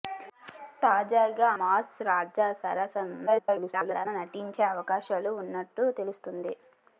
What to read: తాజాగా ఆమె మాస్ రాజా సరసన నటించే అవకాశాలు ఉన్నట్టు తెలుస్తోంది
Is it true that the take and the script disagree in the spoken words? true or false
true